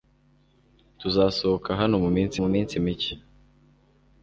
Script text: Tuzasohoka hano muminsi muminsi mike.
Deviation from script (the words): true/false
false